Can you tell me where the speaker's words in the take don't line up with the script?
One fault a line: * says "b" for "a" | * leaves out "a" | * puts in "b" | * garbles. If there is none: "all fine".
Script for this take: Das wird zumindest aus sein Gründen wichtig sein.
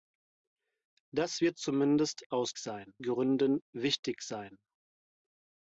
all fine